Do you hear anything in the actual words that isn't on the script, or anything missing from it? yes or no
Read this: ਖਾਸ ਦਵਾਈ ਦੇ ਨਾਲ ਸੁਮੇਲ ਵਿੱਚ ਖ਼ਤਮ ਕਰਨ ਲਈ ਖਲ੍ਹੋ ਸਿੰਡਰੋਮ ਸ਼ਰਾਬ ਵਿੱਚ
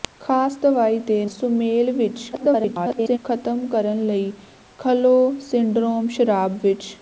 yes